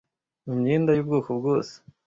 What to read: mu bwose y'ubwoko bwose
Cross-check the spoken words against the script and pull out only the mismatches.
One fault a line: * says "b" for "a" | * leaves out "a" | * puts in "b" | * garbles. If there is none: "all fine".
* says "myenda" for "bwose"